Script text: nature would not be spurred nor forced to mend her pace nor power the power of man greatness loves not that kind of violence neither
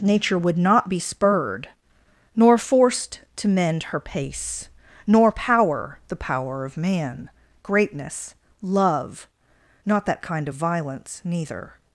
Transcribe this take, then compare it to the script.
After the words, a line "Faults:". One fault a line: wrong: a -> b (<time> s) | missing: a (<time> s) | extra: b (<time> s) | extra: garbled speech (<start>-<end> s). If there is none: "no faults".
nature would not be spurred nor forced to mend her pace nor power the power of man greatness love not that kind of violence neither
Faults:
wrong: loves -> love (8.6 s)